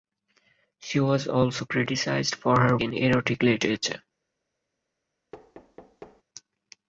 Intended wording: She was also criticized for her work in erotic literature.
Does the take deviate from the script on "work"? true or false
true